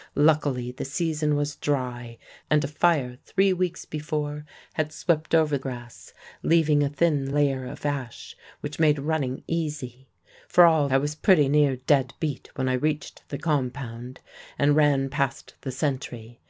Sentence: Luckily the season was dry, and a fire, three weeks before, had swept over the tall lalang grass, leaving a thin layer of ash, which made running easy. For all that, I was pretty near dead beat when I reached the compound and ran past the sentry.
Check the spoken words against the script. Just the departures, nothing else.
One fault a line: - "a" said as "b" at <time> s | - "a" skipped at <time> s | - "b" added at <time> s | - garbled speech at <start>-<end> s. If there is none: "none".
- "the tall lalang" skipped at 5.6 s
- "that" skipped at 10.9 s